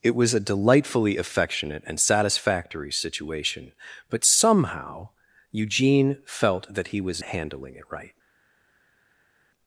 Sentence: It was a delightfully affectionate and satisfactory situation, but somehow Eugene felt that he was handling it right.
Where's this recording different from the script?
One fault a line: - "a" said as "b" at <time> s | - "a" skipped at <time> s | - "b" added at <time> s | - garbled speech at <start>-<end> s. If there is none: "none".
none